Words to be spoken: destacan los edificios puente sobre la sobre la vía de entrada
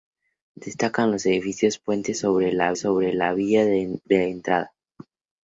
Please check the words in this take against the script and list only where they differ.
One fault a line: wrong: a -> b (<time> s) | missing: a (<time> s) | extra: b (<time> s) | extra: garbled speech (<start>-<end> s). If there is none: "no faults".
no faults